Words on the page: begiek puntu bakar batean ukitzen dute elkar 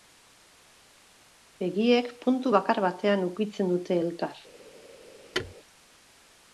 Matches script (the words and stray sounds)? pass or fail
fail